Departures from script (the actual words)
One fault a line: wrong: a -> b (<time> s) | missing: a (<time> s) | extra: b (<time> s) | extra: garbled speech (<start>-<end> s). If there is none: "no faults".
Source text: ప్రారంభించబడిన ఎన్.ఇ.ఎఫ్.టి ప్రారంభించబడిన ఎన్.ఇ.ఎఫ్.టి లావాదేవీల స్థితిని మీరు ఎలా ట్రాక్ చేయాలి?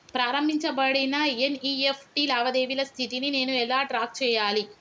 missing: ప్రారంభించబడిన ఎన్.ఇ.ఎఫ్.టి (2.2 s)
wrong: మీరు -> నేను (3.3 s)